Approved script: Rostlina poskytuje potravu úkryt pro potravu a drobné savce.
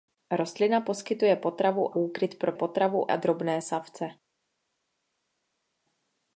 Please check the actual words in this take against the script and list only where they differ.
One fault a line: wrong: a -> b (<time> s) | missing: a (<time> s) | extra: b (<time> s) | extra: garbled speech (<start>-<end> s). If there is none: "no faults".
no faults